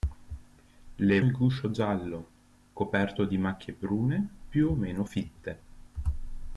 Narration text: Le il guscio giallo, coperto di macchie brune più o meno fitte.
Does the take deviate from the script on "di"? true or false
false